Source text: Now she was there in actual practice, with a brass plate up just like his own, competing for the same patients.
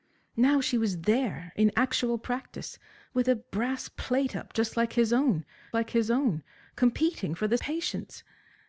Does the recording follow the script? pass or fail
fail